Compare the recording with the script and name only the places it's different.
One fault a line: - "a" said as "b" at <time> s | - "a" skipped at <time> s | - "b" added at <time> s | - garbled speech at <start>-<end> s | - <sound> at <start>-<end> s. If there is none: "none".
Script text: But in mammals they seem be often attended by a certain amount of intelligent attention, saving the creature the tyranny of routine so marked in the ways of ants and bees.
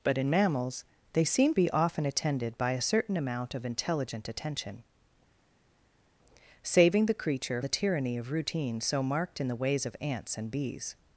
none